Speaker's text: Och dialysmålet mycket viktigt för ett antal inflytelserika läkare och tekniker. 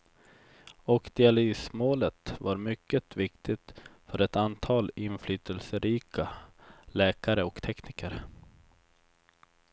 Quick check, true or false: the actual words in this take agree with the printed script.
false